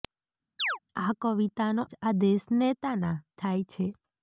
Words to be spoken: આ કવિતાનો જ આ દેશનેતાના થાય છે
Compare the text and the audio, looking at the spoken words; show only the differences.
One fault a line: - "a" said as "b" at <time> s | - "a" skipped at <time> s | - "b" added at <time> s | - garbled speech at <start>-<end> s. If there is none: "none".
none